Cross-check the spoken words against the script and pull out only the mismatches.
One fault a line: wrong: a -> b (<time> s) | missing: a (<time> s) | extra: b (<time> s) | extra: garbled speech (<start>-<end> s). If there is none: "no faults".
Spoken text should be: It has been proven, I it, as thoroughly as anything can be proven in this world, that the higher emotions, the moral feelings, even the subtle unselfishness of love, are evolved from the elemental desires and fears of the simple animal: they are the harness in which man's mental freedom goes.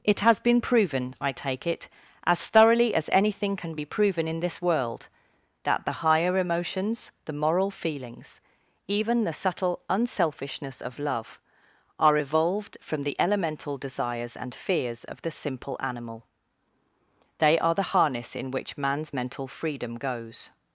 extra: take (1.3 s)